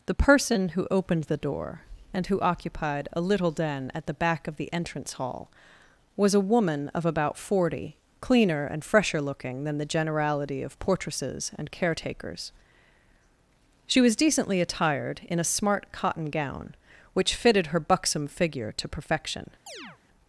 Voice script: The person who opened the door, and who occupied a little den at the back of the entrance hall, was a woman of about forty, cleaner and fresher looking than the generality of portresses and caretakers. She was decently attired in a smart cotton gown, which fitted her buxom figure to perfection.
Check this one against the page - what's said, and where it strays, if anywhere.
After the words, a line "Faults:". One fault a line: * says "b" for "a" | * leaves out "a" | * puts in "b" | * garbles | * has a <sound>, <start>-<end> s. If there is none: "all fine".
The person who opened the door, and who occupied a little den at the back of the entrance hall, was a woman of about forty, cleaner and fresher looking than the generality of portresses and caretakers. She was decently attired in a smart cotton gown, which fitted her buxom figure to perfection.
Faults:
* has a chirp, 19.7-20.0 s